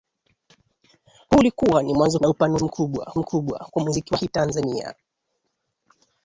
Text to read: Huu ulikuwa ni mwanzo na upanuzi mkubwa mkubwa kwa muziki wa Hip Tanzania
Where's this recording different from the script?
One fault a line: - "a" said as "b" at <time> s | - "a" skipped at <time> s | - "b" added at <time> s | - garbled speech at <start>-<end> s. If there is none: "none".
none